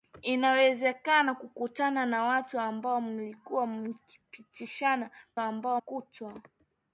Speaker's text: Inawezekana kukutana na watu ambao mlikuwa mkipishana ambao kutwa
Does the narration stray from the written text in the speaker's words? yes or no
no